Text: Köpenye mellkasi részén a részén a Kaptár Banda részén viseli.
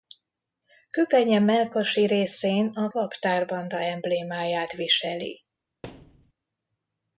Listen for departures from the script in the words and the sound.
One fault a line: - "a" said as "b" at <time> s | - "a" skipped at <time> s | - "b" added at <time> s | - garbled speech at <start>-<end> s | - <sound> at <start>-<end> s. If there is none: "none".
- "részén a" skipped at 2.9 s
- "részén" said as "emblémáját" at 3.8 s
- thud at 5.8-6.3 s